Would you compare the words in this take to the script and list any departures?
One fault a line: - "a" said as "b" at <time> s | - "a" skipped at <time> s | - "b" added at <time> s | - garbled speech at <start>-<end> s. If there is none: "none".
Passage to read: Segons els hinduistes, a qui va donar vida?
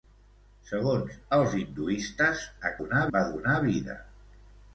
- "qui" said as "donar" at 2.8 s